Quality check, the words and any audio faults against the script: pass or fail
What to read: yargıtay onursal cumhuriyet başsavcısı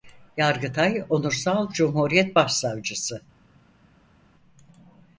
pass